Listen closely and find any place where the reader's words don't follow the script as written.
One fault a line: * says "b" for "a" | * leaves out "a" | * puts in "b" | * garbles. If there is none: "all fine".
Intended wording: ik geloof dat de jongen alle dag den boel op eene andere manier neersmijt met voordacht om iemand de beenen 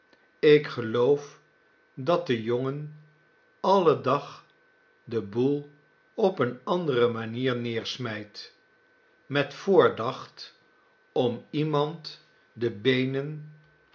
all fine